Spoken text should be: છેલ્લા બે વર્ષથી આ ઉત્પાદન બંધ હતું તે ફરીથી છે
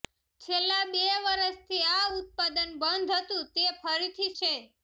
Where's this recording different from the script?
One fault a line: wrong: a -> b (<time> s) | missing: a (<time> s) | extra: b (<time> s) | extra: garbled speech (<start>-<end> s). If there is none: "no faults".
no faults